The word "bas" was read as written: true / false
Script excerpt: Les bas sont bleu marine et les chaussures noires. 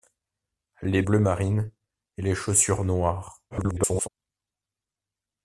false